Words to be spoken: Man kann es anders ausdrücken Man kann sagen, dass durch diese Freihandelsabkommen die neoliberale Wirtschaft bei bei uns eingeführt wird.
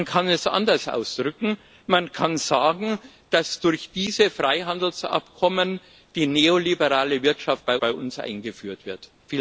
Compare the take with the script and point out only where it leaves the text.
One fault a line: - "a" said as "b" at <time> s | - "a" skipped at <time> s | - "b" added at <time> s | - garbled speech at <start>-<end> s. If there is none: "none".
none